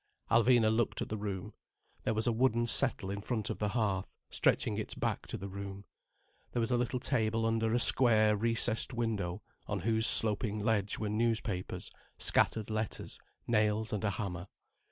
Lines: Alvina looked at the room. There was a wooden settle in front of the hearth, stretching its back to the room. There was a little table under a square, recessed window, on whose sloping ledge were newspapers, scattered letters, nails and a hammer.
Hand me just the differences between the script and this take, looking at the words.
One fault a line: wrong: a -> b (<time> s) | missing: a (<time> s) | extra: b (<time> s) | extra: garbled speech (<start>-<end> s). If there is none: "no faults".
no faults